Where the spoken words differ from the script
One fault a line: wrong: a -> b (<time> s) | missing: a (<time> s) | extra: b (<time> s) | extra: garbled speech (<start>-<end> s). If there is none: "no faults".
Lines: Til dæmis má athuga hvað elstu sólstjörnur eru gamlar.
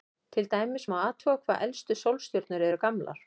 no faults